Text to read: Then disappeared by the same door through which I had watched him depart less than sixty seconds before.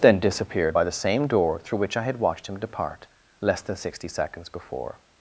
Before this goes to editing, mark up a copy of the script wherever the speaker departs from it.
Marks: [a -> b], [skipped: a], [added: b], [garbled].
Then disappeared by the same door through which I had watched him depart less than sixty seconds before.